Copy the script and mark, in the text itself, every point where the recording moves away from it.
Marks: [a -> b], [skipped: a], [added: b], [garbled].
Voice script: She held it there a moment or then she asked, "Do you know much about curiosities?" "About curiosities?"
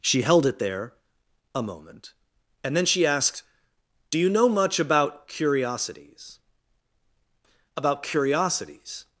She held it there a moment [or -> and] then she asked, "Do you know much about curiosities?" "About curiosities?"